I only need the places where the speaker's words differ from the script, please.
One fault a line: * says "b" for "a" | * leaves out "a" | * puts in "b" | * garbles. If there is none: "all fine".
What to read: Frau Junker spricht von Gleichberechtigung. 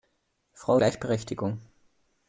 * leaves out "Junker spricht von"